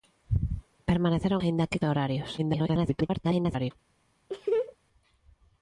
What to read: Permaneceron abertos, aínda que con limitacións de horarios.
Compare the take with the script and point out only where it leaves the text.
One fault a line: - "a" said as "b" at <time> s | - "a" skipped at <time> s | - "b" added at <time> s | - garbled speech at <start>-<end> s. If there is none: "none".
- "abertos" skipped at 1.4 s
- "con limitacións" skipped at 1.8 s
- garbled speech at 2.4-3.7 s